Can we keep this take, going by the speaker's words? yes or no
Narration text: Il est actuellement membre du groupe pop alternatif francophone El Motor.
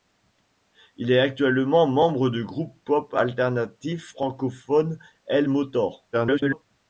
no